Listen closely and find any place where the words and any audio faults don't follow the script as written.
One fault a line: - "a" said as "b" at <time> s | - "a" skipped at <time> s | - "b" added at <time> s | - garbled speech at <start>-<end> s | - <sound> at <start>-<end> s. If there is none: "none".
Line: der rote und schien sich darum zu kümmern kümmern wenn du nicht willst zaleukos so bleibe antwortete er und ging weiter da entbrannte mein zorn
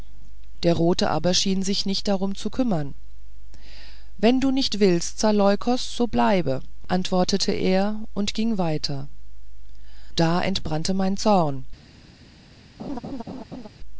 - "und" said as "aber" at 1.1 s
- "nicht" added at 1.9 s
- "kümmern" skipped at 3.0 s
- laugh at 12.8-13.7 s